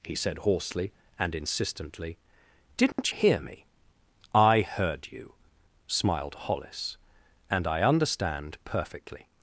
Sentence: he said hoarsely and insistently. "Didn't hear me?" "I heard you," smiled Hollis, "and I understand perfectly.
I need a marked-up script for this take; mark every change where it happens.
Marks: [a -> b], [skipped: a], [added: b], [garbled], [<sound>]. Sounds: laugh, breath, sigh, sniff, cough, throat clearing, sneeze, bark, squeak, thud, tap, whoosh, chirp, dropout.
he said hoarsely and insistently. "Didn't [dropout] hear me?" "I heard you," smiled Hollis, "and I understand perfectly.